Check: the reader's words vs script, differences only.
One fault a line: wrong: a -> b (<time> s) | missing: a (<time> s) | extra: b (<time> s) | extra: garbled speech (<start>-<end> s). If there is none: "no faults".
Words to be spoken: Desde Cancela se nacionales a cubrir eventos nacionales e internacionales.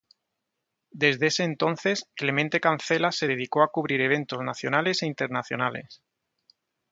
extra: ese entonces Clemente (1.3 s)
wrong: nacionales -> dedicó (3.2 s)